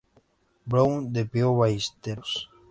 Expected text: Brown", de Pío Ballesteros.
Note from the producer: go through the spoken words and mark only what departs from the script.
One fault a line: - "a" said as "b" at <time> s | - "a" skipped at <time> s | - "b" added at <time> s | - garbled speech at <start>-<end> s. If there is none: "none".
none